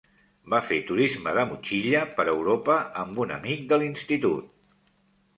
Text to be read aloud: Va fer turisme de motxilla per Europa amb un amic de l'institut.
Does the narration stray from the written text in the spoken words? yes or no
no